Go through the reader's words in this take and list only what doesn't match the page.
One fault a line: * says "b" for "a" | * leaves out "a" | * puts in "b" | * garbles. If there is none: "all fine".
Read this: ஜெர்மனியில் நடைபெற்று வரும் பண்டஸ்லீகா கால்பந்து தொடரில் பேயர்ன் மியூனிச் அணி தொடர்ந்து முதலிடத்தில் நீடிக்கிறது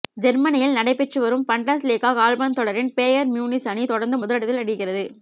all fine